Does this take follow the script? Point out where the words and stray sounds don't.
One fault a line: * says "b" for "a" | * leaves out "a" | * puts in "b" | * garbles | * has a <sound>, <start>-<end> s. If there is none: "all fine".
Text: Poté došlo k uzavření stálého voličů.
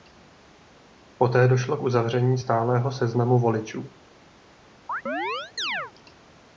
* puts in "seznamu"
* has a chirp, 4.9-5.9 s